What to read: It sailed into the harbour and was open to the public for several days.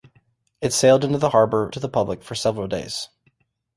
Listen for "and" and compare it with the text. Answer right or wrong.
wrong